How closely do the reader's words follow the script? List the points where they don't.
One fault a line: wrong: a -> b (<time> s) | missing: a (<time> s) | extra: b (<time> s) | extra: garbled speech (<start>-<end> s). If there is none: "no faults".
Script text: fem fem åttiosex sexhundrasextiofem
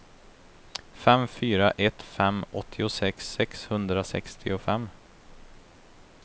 extra: fyra ett (1.3 s)